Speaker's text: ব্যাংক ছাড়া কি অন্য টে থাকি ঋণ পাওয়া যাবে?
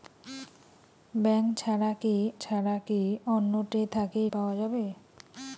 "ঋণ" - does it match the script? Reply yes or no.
no